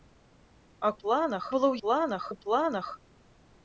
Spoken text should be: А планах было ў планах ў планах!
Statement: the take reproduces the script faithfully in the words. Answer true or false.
true